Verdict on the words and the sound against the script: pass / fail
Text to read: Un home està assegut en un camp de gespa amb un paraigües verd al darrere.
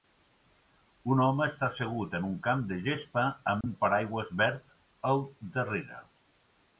fail